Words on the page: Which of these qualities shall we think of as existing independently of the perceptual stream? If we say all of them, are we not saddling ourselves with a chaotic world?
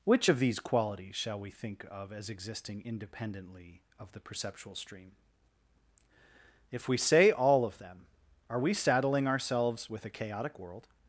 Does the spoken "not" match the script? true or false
false